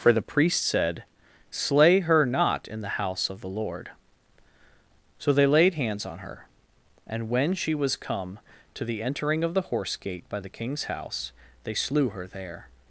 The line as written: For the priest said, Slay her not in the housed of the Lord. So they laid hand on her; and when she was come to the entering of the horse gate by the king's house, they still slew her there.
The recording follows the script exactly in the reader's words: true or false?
false